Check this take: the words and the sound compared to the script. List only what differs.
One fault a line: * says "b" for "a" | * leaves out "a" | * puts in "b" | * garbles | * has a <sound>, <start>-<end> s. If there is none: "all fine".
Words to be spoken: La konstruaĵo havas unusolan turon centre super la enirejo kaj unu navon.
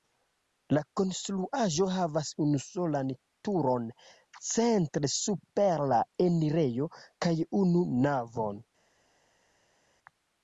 all fine